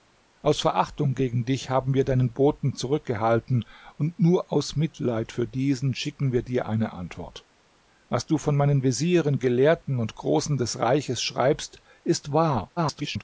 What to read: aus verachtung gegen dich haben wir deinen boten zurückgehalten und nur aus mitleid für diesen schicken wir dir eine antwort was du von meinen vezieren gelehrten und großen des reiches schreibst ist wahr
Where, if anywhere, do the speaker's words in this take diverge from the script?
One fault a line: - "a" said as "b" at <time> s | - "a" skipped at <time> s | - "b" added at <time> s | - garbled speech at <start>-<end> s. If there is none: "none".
- garbled speech at 12.8-13.2 s